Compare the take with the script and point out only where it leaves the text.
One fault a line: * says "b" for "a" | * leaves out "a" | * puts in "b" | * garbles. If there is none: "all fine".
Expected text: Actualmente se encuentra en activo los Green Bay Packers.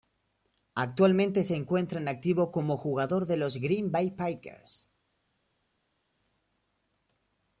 * puts in "como jugador de"